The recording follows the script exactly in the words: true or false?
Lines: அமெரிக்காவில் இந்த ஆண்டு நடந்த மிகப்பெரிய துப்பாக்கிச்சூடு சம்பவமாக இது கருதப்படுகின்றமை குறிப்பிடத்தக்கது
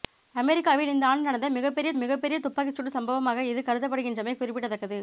false